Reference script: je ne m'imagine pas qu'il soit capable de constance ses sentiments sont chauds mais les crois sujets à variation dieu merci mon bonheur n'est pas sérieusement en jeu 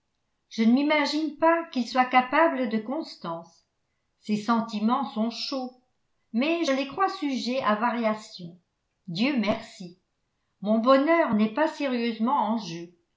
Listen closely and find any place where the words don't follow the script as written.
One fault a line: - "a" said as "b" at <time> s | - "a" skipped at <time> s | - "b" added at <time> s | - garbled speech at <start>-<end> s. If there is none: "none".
none